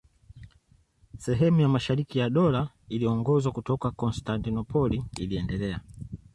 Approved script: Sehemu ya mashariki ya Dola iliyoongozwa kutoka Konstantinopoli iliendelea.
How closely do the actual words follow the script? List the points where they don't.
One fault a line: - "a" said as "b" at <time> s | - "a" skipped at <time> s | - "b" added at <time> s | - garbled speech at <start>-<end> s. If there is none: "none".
none